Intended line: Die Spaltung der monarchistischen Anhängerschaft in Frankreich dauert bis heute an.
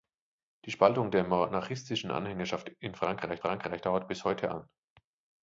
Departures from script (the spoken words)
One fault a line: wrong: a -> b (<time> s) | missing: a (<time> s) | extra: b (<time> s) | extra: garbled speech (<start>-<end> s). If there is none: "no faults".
extra: Frankreich (3.4 s)